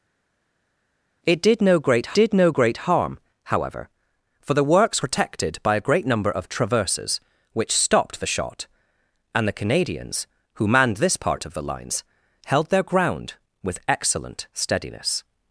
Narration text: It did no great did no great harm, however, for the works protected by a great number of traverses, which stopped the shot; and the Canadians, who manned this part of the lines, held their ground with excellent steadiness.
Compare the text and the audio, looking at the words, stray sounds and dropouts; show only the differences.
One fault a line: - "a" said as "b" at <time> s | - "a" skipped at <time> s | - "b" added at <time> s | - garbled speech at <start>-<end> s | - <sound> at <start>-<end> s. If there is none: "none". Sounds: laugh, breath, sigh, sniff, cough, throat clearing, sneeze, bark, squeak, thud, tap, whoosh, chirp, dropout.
none